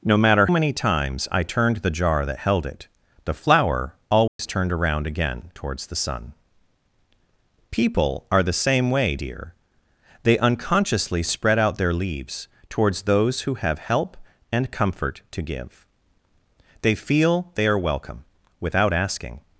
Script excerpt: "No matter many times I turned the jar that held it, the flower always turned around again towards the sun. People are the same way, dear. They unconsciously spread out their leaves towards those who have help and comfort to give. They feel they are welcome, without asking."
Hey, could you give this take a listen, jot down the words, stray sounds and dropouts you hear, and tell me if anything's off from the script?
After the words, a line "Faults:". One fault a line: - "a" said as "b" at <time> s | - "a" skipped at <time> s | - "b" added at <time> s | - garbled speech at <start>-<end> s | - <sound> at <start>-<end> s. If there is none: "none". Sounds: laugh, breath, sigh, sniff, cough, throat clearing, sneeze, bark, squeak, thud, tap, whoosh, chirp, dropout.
"No matter many times I turned the jar that held it, the flower always turned around again towards the sun. People are the same way, dear. They unconsciously spread out their leaves towards those who have help and comfort to give. They feel they are welcome, without asking."
Faults:
- dropout at 4.3-4.4 s